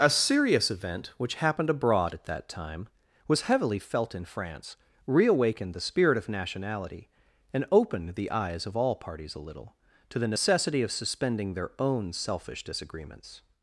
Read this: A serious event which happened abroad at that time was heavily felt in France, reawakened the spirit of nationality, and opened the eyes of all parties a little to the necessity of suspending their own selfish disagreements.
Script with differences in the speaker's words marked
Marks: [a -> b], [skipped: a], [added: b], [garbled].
A serious event which happened abroad at that time was heavily felt in France, reawakened the spirit of nationality, and opened the eyes of all parties a little to the necessity of suspending their own selfish disagreements.